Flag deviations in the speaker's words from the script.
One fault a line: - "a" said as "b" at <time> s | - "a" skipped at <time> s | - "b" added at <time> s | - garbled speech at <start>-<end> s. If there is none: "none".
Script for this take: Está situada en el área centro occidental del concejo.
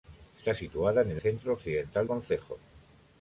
- "área" skipped at 1.2 s
- "del" skipped at 2.1 s